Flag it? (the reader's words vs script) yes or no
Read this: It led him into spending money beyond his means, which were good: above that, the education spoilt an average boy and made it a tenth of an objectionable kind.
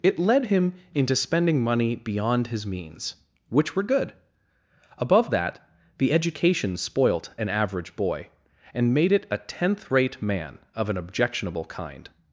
yes